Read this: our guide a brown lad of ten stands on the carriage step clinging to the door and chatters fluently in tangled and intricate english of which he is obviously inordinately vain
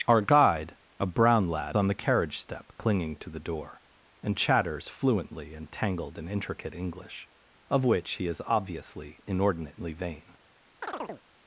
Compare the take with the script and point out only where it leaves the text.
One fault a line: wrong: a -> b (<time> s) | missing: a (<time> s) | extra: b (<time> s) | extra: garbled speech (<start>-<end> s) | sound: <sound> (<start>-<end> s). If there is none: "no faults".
missing: of ten stands (1.8 s)
sound: chirp (10.8-11.2 s)